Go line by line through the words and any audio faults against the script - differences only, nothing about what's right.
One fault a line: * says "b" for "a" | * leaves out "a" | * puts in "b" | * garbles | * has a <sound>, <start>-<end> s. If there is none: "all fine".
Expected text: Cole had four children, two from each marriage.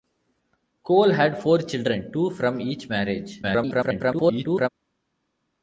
* garbles